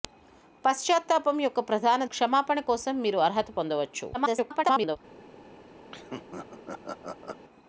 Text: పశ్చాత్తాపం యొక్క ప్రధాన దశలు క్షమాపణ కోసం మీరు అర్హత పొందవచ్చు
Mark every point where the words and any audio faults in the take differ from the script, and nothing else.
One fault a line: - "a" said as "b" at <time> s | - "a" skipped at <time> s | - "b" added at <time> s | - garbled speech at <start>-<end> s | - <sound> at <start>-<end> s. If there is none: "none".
- "దశలు" skipped at 2.0 s
- garbled speech at 4.1-5.0 s
- laugh at 5.9-7.4 s